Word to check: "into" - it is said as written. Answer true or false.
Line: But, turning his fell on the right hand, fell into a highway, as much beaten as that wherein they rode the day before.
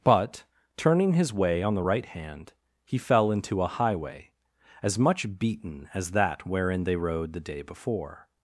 true